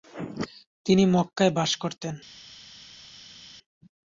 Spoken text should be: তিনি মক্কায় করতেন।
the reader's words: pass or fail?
fail